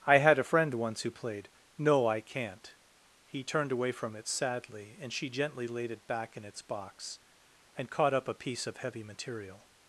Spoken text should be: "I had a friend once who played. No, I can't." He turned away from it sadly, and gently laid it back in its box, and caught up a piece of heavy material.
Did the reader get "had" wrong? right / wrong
right